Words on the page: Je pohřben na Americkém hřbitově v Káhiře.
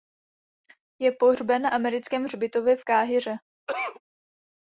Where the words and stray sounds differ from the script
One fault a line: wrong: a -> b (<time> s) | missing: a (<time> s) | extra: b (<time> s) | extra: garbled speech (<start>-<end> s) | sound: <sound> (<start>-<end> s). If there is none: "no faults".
sound: cough (3.7-4.0 s)